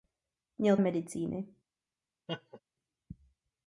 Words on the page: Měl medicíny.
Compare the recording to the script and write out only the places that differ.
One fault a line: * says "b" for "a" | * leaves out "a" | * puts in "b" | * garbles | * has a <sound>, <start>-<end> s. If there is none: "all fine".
* has a laugh, 2.3-2.6 s